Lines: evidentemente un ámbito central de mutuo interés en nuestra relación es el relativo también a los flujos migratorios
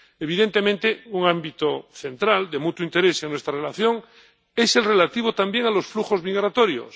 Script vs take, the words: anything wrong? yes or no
no